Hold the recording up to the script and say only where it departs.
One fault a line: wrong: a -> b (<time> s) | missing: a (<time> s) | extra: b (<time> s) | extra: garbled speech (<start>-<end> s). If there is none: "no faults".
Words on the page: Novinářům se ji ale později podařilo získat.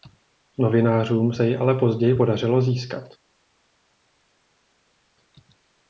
no faults